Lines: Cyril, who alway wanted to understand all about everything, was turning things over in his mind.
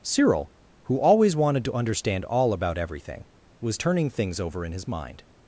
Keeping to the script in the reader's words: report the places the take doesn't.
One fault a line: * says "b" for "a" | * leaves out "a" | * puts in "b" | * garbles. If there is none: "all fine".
* says "always" for "alway"